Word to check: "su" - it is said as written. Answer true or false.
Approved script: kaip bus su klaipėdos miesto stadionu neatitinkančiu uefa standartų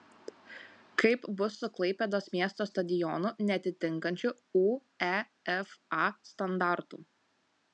true